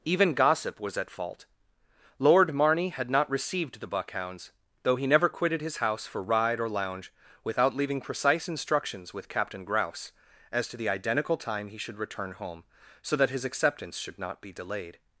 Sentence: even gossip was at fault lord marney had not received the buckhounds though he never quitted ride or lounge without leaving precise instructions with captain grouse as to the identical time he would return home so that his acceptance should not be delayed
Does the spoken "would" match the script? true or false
false